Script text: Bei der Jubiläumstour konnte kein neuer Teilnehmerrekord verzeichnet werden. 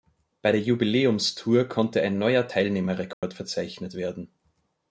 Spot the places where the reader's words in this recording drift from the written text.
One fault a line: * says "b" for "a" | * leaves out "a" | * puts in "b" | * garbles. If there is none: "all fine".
* says "ein" for "kein"